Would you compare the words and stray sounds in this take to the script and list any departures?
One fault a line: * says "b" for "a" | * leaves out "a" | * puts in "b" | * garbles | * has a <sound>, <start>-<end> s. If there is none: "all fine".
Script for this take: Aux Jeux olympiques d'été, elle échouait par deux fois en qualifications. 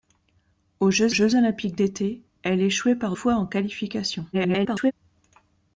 * puts in "Jeux"
* leaves out "deux"
* garbles